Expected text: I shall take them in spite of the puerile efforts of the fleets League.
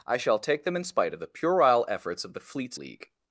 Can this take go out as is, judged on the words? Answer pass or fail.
pass